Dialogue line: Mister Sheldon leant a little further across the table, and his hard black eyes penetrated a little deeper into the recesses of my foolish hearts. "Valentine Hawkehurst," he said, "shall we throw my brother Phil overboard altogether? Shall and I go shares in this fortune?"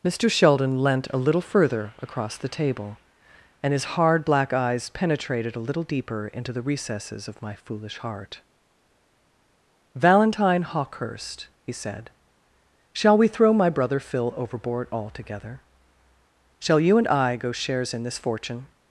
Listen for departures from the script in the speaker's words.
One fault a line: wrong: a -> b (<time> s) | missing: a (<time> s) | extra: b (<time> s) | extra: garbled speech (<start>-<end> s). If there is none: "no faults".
wrong: hearts -> heart (8.0 s)
extra: you (16.8 s)